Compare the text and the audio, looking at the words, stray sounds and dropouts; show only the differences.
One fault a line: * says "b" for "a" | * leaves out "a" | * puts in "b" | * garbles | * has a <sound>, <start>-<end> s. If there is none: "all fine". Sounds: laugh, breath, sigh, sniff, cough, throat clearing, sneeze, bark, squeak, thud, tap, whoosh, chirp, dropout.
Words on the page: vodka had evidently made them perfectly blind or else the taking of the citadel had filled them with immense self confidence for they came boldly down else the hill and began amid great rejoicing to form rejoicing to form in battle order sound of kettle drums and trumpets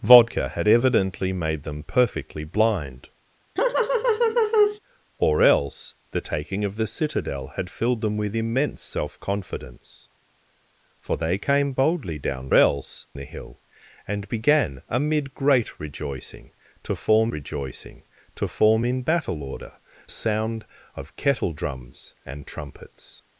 * has a laugh, 3.6-4.8 s